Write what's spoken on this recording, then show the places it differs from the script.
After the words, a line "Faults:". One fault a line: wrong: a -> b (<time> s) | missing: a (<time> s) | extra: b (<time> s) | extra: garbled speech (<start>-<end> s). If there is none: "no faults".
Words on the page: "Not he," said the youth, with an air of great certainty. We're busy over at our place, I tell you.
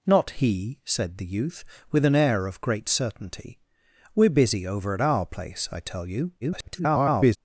"Not he," said the youth, with an air of great certainty. We're busy over at our place, I tell you. [garbled]
Faults:
extra: garbled speech (6.4-7.4 s)